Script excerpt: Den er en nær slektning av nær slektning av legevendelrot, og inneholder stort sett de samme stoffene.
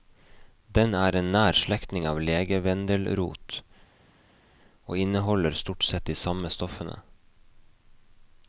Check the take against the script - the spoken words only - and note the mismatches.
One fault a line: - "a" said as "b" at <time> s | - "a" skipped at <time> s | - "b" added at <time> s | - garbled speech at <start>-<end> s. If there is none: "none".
- "nær slektning av" skipped at 2.2 s